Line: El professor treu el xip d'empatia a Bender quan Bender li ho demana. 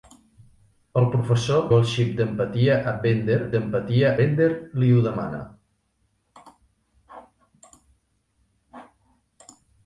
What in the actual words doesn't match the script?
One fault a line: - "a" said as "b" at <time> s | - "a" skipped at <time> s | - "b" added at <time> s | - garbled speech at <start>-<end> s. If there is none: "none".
- "treu" skipped at 1.6 s
- "quan" said as "d'empatia" at 3.6 s